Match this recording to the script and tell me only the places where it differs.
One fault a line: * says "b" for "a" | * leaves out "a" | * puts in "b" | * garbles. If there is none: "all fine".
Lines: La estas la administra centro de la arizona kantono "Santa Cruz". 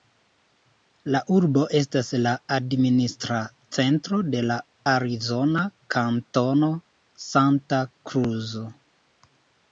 * puts in "urbo"